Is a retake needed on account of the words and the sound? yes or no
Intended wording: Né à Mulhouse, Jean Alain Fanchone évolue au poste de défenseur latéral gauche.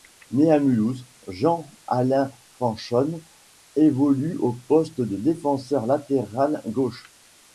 no